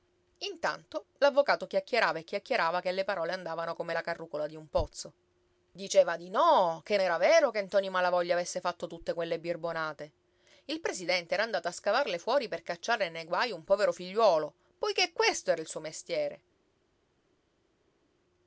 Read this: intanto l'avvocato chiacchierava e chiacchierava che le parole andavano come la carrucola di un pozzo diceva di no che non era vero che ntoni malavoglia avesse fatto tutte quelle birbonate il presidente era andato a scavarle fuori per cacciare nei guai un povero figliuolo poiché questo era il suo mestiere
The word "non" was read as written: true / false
false